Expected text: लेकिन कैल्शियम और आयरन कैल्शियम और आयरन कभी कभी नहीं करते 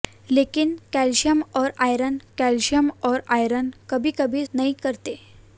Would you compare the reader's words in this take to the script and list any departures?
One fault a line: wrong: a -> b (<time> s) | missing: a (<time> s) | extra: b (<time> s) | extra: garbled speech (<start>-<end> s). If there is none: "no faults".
no faults